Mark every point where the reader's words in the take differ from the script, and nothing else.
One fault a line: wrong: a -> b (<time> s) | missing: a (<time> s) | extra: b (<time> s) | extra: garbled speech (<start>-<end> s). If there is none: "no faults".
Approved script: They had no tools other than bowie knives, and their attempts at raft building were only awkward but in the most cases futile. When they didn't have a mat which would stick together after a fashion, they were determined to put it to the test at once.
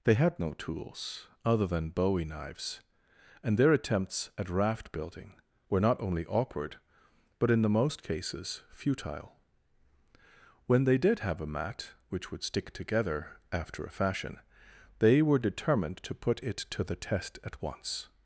extra: not (5.8 s)
wrong: didn't -> did (11.0 s)